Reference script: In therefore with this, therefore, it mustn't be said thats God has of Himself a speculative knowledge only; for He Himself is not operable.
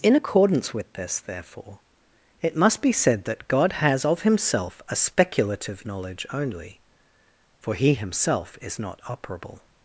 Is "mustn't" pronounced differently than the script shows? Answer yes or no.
yes